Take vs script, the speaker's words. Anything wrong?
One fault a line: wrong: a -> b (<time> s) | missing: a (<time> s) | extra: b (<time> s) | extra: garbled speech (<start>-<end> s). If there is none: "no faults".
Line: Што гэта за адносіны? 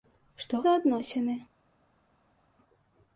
missing: гэта (0.6 s)